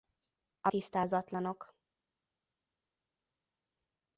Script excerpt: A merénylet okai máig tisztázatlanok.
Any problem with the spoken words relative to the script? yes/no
yes